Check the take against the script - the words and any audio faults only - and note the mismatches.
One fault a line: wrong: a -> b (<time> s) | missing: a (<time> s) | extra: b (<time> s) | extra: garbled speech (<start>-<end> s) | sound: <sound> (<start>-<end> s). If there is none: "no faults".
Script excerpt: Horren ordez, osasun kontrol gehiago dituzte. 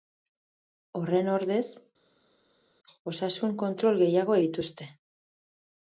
no faults